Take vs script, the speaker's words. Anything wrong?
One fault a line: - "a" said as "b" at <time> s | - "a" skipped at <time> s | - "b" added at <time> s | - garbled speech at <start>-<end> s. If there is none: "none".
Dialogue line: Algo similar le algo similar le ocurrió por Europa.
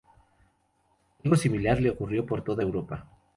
- "algo similar le" skipped at 1.9 s
- "toda" added at 2.4 s